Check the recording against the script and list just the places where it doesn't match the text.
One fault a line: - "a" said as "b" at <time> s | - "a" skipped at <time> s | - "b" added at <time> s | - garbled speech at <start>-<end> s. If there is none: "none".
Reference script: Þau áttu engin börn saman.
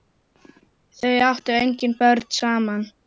none